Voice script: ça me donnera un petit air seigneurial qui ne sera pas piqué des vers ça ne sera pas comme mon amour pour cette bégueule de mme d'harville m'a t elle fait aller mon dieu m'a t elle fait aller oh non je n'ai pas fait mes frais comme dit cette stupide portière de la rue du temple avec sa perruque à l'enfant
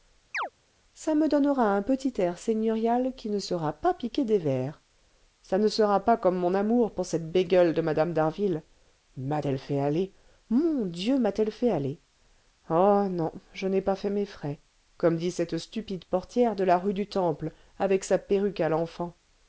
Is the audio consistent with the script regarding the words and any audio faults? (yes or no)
no